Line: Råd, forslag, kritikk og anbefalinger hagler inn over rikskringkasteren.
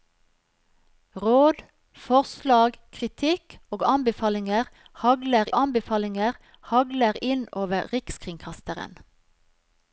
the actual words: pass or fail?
fail